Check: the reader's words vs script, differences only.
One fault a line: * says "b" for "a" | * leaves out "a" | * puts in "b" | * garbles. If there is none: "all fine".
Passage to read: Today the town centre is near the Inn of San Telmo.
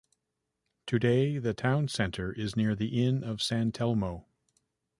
all fine